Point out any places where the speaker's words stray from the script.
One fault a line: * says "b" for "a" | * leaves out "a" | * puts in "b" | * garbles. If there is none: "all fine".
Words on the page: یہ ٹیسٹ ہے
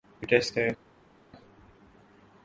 all fine